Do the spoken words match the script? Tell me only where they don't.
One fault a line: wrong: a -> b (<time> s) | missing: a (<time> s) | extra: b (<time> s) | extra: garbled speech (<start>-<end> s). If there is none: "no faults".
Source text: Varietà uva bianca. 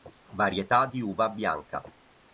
extra: di (0.8 s)